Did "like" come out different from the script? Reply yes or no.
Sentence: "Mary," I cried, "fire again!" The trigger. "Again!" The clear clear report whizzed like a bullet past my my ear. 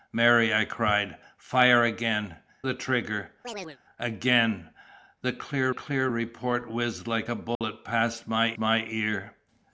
no